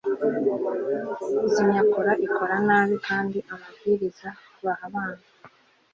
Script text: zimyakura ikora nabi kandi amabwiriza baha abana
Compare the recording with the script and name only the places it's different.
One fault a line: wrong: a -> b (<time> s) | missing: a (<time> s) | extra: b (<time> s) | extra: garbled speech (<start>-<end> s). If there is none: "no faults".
no faults